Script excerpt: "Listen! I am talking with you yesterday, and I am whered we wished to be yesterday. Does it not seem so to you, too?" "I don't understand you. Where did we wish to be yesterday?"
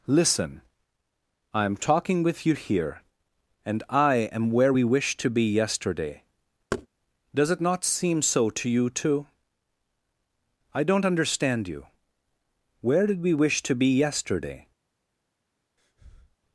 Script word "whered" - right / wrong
wrong